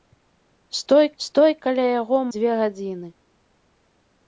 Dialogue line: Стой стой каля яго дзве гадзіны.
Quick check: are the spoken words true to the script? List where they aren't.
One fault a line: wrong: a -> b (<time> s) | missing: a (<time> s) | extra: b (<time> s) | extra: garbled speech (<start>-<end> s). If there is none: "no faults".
no faults